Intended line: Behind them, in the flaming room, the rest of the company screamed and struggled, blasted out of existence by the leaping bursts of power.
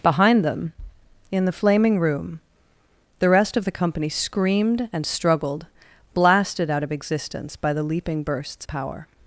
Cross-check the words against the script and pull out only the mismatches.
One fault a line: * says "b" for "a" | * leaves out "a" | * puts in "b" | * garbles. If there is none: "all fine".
* leaves out "of"